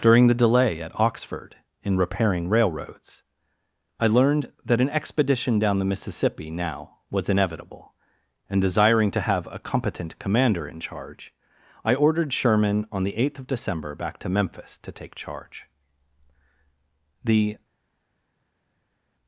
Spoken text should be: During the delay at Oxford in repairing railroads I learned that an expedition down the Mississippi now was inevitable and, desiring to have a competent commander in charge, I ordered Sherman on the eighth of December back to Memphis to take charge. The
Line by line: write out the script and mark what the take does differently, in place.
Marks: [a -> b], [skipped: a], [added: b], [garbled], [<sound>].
During the delay at Oxford in repairing railroads I learned that an expedition down the Mississippi now was inevitable and, desiring to have a competent commander in charge, I ordered Sherman on the eighth of December back to Memphis to take charge. The